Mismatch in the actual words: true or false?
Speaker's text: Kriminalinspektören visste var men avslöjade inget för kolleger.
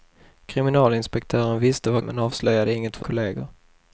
false